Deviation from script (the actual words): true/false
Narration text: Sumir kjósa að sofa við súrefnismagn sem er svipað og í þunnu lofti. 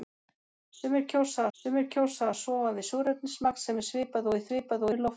true